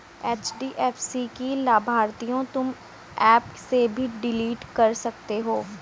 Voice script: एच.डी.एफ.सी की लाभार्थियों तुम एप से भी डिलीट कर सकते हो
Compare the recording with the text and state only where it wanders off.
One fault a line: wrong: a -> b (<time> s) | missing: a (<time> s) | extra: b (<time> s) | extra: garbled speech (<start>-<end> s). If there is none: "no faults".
no faults